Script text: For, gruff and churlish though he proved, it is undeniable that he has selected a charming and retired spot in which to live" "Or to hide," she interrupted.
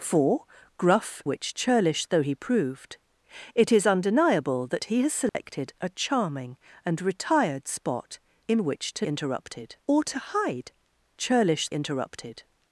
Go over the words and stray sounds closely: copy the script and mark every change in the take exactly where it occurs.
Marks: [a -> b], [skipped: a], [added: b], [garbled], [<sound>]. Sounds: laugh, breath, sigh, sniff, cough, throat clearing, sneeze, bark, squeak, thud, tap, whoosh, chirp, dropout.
For, gruff [and -> which] churlish though he proved, it is undeniable that he has selected [dropout] a charming and retired spot in which to [live" -> interrupted] "Or to hide," [she -> churlish] interrupted.